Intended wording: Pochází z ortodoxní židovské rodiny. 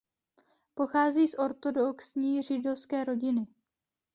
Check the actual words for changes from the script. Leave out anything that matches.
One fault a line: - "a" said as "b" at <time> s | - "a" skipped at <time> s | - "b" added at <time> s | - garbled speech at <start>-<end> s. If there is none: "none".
none